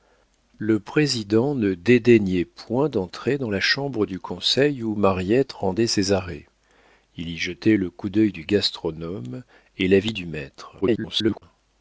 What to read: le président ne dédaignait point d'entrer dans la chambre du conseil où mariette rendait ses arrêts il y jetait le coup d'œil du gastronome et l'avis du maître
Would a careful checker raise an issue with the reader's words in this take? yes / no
yes